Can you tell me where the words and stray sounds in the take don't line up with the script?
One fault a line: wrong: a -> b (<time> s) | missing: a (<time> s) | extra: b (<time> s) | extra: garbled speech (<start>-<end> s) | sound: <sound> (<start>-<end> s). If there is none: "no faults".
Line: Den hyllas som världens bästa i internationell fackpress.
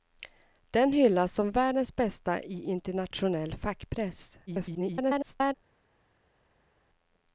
extra: garbled speech (4.5-5.5 s)